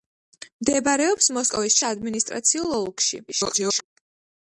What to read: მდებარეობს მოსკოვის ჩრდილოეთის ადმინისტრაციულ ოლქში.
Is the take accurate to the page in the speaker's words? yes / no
no